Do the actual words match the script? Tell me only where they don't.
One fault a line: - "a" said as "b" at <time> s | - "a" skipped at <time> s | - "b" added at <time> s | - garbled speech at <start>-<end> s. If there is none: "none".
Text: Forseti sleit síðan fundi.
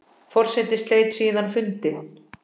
none